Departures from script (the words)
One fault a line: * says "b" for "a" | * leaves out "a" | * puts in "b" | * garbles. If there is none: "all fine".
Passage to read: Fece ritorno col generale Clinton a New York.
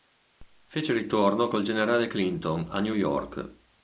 all fine